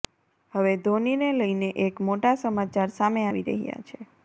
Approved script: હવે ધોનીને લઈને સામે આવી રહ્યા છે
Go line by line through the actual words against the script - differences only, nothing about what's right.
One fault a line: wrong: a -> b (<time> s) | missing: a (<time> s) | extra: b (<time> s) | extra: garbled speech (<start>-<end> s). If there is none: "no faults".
extra: એક મોટા સમાચાર (1.9 s)